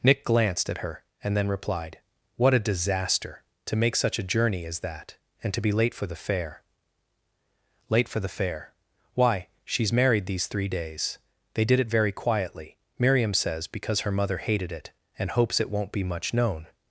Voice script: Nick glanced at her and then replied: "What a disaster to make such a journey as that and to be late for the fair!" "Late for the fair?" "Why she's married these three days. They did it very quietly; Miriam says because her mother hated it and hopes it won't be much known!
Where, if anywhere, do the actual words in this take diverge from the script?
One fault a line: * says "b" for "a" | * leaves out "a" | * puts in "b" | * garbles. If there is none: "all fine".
all fine